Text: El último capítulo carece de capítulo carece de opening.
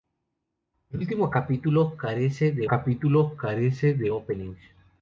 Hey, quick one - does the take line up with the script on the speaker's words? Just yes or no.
yes